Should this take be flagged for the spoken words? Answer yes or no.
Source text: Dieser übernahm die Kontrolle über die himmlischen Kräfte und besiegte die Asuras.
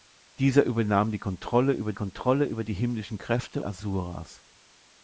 yes